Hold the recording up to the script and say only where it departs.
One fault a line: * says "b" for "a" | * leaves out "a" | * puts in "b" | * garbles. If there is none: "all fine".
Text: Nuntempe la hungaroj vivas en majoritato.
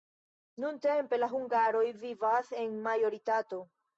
all fine